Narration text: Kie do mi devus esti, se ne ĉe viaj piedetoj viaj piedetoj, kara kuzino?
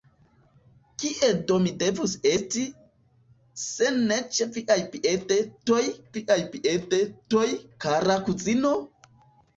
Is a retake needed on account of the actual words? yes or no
no